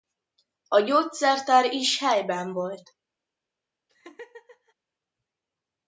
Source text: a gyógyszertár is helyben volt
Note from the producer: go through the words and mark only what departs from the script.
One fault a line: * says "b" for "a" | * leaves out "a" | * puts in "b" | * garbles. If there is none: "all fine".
all fine